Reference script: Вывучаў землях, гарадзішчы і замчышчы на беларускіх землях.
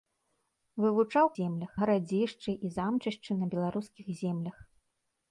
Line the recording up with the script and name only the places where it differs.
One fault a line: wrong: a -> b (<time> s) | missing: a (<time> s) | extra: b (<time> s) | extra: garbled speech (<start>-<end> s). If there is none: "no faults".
no faults